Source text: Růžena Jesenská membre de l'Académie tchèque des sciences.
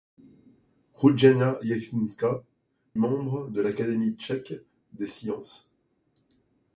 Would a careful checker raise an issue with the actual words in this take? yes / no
no